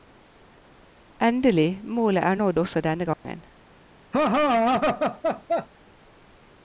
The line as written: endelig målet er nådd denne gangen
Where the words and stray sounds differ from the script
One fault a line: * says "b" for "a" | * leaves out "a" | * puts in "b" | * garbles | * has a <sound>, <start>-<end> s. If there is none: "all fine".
* puts in "også"
* has a dropout, 3.1-3.2 s
* has a laugh, 4.1-5.7 s